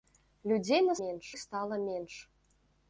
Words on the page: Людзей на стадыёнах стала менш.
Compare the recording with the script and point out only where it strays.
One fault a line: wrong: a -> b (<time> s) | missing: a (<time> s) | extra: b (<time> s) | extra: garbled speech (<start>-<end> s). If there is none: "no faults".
wrong: стадыёнах -> менш (1.0 s)